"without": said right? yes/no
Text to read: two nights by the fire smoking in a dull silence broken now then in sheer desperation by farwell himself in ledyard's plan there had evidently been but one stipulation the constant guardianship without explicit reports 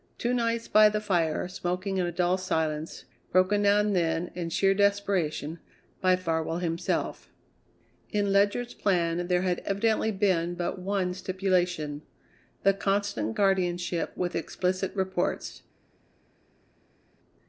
no